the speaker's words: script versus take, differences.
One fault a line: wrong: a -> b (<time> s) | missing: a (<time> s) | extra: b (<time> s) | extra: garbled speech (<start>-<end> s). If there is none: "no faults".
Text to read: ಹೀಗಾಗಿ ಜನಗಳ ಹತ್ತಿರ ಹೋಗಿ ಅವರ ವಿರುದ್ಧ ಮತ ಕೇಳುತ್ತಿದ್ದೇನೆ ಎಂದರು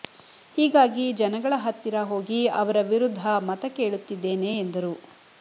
no faults